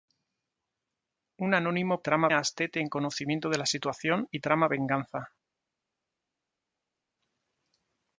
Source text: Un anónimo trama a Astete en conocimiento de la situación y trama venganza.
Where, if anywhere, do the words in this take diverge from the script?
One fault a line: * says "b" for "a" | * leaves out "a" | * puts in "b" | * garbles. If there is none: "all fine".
all fine